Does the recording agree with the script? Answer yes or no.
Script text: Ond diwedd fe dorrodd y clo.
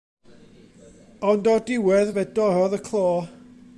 no